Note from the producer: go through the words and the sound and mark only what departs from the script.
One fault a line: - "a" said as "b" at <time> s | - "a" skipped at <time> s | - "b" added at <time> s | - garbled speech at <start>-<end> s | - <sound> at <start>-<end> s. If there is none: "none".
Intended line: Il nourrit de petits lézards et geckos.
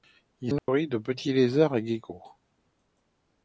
- dropout at 0.6-0.7 s